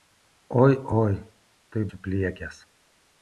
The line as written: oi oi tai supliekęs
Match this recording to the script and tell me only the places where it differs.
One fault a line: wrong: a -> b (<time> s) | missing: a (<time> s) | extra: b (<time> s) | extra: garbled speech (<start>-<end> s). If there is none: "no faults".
no faults